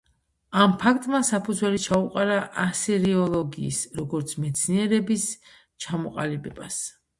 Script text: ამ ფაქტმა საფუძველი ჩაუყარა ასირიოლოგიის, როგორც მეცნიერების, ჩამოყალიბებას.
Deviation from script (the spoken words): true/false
false